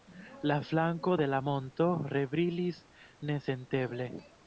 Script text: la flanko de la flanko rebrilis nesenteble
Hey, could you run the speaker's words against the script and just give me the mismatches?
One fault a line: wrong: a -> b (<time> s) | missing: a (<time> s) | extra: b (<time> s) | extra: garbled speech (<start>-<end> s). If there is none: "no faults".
wrong: flanko -> monto (1.5 s)